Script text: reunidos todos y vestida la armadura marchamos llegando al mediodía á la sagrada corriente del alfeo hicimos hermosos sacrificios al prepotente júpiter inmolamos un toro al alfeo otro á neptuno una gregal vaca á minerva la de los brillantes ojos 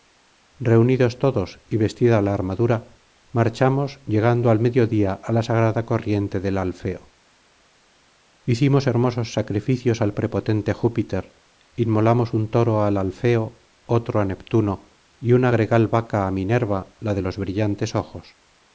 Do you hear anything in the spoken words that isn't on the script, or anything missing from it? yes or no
yes